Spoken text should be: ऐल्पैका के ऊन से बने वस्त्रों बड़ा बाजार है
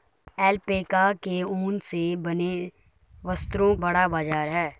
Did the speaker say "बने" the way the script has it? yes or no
yes